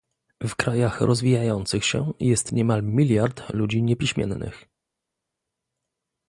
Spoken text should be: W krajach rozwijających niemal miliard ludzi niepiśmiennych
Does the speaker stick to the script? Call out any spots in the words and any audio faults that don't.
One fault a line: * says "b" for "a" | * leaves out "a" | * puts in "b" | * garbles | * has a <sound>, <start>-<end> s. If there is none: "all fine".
* puts in "się jest"